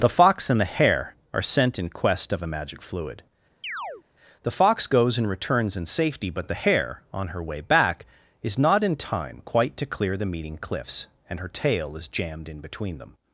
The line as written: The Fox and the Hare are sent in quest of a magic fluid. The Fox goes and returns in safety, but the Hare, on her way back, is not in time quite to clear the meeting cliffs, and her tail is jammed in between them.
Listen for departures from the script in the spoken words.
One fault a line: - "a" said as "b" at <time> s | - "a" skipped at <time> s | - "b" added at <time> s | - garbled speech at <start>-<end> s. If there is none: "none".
none